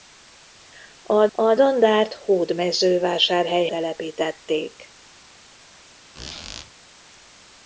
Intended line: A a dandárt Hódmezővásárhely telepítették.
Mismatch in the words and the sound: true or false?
true